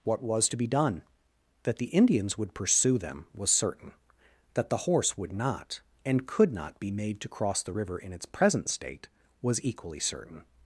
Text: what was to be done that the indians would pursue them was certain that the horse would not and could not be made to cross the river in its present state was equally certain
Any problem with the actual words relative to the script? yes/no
no